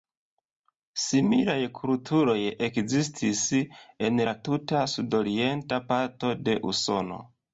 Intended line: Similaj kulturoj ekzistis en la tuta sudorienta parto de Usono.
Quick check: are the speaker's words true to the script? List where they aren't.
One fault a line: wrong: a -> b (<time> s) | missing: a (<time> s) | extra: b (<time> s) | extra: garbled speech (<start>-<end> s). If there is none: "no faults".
no faults